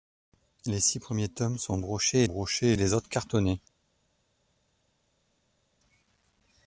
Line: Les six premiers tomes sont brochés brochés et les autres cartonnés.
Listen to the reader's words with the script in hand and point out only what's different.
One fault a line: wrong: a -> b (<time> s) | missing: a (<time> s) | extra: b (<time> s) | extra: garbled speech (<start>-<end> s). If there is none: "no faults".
no faults